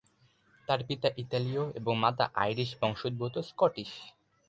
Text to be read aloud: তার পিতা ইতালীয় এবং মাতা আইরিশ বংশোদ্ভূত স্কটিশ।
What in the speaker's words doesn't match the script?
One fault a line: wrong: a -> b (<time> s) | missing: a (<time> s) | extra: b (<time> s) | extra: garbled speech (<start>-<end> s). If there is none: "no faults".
no faults